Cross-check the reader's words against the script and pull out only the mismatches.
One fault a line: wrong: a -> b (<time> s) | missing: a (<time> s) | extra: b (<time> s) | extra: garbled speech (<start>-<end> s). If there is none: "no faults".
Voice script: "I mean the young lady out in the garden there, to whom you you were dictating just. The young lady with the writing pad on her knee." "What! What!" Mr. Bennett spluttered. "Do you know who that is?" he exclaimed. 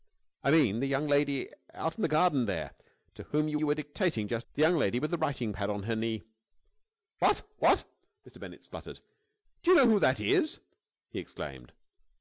no faults